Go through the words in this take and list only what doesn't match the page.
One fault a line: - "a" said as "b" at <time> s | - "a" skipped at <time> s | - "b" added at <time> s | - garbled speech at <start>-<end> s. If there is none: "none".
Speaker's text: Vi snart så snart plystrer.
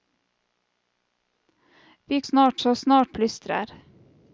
none